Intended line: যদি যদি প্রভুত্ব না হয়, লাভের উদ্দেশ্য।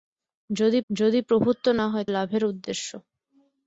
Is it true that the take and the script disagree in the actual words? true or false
false